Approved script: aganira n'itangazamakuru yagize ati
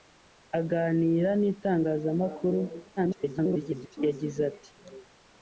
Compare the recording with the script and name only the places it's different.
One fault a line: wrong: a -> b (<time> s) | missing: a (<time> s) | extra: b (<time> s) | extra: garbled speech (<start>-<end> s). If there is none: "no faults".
extra: garbled speech (3.0-4.0 s)